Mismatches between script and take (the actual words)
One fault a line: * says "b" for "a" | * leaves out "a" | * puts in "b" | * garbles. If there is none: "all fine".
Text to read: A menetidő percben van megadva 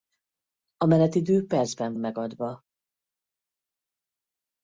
* leaves out "van"